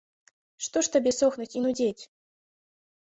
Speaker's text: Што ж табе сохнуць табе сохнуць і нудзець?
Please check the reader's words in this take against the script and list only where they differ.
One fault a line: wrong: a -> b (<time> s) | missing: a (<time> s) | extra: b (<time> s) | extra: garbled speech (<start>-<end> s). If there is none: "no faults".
missing: табе сохнуць (1.5 s)